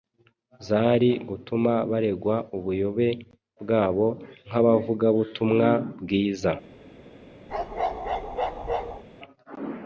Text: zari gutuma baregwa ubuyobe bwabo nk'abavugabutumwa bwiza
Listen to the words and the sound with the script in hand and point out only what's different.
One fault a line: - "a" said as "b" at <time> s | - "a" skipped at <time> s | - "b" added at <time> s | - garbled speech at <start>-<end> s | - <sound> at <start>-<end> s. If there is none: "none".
- bark at 7.5-9.0 s